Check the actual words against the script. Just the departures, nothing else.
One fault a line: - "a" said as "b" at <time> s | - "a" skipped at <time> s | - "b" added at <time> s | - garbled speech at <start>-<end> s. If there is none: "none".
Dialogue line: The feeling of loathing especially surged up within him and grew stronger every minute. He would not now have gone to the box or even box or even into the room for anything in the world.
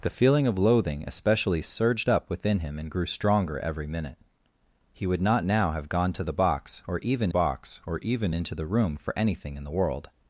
none